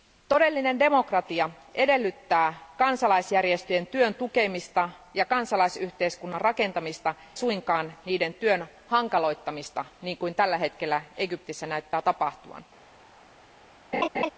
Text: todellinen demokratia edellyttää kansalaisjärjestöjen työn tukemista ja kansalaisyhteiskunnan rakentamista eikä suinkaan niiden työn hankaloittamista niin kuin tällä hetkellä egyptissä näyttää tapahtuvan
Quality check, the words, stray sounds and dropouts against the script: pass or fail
fail